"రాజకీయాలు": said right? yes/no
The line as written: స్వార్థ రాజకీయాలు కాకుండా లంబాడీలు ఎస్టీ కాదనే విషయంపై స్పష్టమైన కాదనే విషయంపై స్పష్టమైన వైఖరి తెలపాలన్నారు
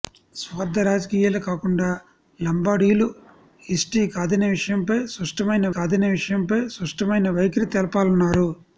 yes